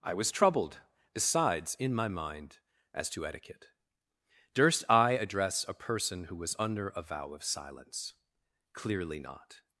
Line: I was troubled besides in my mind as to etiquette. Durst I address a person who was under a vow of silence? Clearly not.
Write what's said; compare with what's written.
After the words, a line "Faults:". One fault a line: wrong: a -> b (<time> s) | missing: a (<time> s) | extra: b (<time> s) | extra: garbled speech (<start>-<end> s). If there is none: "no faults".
I was troubled besides in my mind as to etiquette. Durst I address a person who was under a vow of silence? Clearly not.
Faults:
no faults